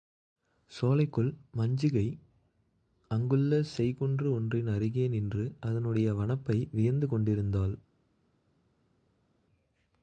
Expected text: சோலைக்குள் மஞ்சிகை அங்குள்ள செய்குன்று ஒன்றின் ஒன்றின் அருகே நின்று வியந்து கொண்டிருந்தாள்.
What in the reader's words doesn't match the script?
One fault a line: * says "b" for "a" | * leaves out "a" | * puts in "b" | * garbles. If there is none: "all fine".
* leaves out "ஒன்றின்"
* puts in "அதனுடைய வனப்பை"